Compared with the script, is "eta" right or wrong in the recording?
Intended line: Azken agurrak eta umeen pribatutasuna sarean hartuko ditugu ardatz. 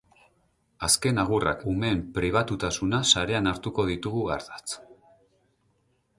wrong